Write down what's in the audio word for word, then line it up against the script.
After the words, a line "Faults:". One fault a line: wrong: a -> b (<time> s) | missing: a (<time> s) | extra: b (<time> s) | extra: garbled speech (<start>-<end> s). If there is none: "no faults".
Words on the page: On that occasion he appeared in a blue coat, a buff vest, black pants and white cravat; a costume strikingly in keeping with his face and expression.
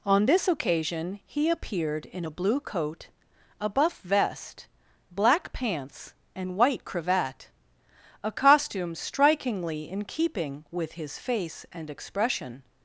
On this occasion he appeared in a blue coat, a buff vest, black pants and white cravat; a costume strikingly in keeping with his face and expression.
Faults:
wrong: that -> this (0.2 s)